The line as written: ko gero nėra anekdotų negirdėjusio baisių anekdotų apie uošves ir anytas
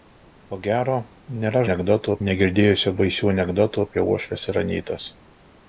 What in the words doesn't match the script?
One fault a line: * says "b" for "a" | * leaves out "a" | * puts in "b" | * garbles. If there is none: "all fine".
all fine